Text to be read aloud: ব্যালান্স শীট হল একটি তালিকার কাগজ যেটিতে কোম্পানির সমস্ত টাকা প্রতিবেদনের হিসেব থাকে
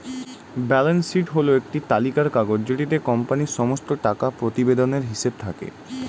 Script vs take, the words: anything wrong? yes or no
no